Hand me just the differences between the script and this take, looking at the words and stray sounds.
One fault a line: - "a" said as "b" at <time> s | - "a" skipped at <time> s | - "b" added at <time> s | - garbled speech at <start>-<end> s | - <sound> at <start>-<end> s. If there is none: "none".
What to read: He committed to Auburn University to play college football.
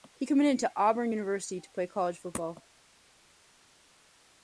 none